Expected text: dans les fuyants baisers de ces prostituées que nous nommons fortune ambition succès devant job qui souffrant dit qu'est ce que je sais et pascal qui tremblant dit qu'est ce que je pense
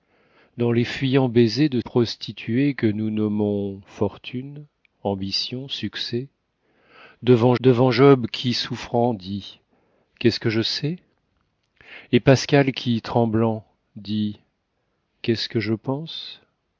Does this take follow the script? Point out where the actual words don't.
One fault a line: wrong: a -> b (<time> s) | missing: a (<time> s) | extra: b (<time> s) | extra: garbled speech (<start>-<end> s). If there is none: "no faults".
missing: ces (1.8 s)
extra: devant (7.6 s)